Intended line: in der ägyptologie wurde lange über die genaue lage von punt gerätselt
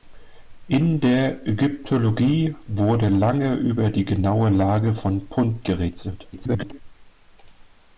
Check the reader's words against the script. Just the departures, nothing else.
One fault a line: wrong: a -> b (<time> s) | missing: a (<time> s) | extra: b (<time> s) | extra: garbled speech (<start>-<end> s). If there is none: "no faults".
extra: garbled speech (6.3-6.8 s)